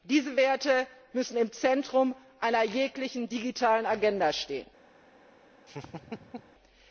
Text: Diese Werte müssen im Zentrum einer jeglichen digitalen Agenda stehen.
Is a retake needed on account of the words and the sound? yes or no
yes